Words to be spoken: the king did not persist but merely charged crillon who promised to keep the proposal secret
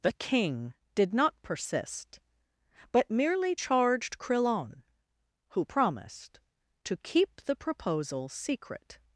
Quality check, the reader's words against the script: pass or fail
pass